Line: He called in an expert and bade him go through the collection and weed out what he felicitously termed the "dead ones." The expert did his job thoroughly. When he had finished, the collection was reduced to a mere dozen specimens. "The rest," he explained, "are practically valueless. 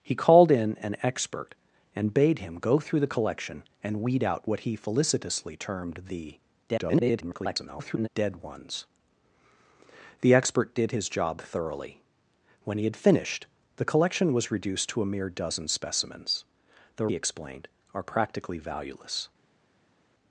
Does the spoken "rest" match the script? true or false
false